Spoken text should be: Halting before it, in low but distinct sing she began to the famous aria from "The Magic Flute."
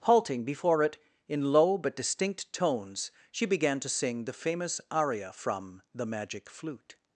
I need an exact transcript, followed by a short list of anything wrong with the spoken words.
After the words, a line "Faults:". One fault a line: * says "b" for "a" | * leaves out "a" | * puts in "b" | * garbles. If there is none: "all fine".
Halting before it, in low but distinct tones she began to sing the famous aria from "The Magic Flute."
Faults:
* says "tones" for "sing"
* puts in "sing"